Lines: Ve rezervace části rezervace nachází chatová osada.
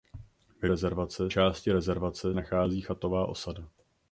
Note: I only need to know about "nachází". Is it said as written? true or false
true